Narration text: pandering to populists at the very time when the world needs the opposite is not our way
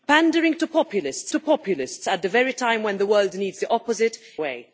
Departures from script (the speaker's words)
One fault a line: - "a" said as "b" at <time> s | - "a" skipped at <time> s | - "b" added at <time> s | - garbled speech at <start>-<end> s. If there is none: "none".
- "to populists" added at 1.3 s
- "is not our" skipped at 4.2 s